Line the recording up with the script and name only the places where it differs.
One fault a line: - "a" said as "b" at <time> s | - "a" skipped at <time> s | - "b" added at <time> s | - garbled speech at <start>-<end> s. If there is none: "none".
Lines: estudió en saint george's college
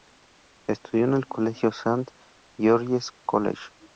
- "el colegio" added at 1.1 s